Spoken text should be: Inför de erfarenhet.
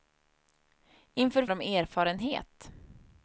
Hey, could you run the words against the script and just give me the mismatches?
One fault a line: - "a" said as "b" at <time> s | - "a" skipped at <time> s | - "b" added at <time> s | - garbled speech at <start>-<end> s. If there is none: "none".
none